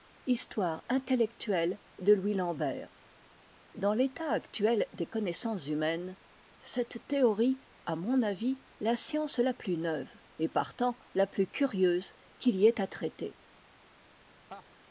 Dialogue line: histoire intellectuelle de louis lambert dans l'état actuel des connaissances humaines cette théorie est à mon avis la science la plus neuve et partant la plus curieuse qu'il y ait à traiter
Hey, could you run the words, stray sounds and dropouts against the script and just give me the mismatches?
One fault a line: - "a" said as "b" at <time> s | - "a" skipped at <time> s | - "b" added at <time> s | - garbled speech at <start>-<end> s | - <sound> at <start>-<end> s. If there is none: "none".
- "est" skipped at 7.7 s
- laugh at 14.5-14.7 s